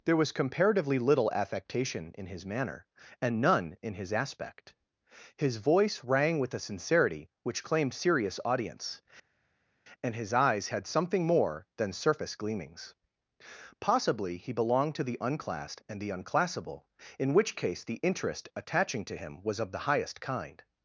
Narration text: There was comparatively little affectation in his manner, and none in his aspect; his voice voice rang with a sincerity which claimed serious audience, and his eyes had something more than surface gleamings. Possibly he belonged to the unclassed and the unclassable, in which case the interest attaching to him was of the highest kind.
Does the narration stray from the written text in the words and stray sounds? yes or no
yes